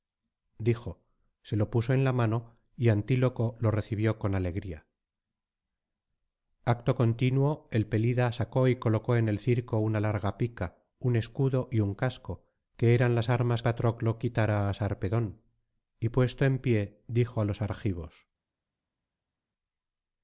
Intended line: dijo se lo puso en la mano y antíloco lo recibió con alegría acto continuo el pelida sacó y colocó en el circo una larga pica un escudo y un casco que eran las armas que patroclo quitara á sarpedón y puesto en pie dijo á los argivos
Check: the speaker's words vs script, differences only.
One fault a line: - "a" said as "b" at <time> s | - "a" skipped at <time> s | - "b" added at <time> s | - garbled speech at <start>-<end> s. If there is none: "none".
- "que" skipped at 13.6 s